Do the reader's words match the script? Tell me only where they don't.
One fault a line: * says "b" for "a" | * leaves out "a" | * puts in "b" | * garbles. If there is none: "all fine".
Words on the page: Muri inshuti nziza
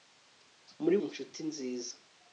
all fine